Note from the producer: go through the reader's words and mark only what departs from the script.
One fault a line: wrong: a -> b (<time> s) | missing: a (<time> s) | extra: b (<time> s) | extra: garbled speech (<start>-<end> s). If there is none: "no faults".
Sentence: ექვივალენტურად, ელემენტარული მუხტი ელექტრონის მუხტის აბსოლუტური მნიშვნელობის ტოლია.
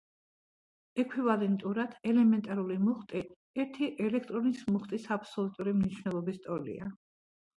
extra: ერთი (3.6 s)